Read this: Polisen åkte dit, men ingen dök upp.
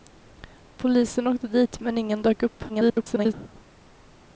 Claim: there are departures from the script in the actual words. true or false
true